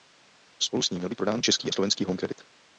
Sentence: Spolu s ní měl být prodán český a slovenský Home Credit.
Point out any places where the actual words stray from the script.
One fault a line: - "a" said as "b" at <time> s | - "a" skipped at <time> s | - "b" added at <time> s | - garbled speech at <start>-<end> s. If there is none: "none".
none